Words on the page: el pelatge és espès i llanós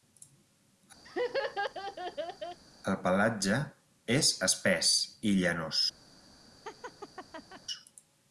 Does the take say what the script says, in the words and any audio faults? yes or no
no